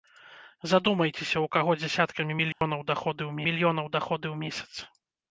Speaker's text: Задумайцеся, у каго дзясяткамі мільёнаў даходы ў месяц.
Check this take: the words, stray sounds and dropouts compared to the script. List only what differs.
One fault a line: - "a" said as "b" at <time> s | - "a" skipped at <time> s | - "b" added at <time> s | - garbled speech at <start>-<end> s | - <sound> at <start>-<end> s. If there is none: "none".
- dropout at 2.5-2.6 s
- "мільёнаў даходы ў" added at 3.5 s